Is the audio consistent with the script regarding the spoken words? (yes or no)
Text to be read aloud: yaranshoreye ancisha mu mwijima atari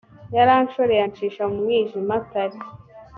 yes